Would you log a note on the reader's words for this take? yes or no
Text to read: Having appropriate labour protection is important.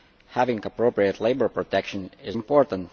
no